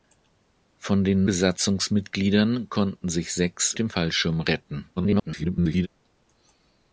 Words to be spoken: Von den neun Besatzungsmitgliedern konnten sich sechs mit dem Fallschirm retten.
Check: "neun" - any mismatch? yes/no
yes